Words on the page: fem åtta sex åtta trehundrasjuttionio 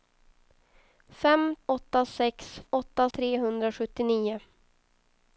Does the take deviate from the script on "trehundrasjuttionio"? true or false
false